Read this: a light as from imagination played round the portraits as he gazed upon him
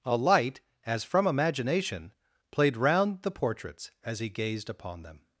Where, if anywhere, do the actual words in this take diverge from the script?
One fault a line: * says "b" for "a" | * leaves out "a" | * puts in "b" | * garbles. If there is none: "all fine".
* says "them" for "him"